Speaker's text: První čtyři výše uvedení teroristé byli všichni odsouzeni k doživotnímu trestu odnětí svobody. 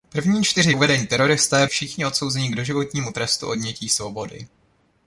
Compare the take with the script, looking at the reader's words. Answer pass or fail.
fail